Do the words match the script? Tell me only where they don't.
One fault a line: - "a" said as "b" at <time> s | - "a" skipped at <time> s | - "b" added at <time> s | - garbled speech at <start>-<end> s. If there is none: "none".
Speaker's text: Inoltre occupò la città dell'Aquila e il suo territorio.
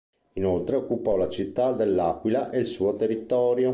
none